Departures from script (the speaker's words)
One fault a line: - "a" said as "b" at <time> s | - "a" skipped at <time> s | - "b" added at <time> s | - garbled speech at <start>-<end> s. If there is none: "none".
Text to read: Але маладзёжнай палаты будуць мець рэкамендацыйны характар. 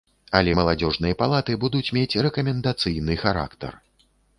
none